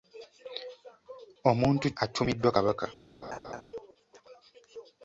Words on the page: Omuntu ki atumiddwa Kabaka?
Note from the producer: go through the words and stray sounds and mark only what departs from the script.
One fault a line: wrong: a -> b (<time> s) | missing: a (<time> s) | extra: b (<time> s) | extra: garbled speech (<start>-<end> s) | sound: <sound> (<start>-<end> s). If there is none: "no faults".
missing: ki (1.9 s)
sound: laugh (3.2-3.6 s)